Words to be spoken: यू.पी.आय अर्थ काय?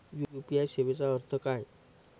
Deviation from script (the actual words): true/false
true